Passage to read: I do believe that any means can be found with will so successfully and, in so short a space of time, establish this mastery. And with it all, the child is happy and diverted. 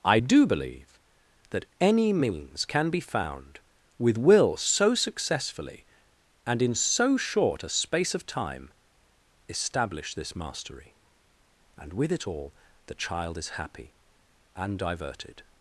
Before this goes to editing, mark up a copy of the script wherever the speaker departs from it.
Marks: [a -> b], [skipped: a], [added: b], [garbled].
I do believe that any means can be found with will so successfully and, in so short a space of time, establish this mastery. And with it all, the child is happy and diverted.